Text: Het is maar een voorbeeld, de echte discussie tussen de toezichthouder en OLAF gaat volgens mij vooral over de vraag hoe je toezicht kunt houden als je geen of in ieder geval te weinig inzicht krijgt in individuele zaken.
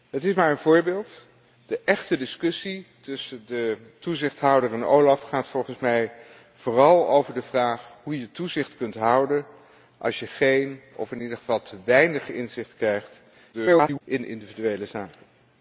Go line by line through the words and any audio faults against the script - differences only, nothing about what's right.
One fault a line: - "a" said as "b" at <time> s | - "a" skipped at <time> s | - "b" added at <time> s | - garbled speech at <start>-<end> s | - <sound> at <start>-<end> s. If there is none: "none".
- garbled speech at 13.5-14.0 s